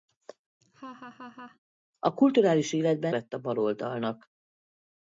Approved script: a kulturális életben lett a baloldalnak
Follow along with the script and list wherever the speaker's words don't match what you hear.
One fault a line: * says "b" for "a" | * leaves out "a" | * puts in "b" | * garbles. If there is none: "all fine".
all fine